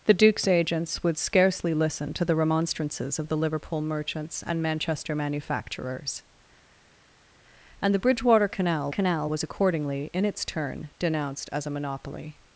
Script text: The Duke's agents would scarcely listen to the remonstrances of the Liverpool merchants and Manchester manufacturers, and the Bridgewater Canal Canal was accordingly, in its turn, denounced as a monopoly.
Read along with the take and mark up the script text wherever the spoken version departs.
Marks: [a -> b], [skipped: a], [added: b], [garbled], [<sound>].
The Duke's agents would scarcely listen to the remonstrances of the Liverpool merchants and Manchester manufacturers, and the Bridgewater Canal Canal was accordingly, in its turn, denounced as a monopoly.